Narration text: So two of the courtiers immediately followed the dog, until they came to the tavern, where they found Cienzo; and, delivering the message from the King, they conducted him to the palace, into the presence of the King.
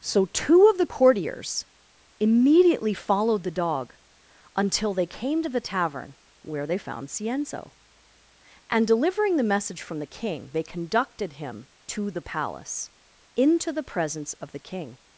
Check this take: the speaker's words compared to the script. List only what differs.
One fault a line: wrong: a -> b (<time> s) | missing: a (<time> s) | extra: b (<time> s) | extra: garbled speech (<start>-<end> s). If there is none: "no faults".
no faults